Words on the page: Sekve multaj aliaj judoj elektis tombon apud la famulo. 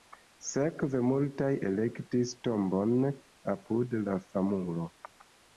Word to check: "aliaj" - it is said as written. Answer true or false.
false